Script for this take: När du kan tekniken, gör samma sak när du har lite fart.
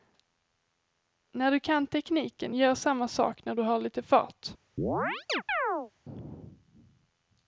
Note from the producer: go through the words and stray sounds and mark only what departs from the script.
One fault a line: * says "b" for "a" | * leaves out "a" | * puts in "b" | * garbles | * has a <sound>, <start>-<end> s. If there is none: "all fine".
* has a chirp, 4.8-5.9 s